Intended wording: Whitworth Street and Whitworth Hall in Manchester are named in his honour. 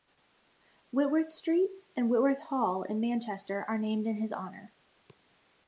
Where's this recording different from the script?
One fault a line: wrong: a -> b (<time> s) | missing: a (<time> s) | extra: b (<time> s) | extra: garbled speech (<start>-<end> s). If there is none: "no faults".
no faults